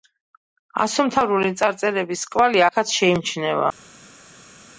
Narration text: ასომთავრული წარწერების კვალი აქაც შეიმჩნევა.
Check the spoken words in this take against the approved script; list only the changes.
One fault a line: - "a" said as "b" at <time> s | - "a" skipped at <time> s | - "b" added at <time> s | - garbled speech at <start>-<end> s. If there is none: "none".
none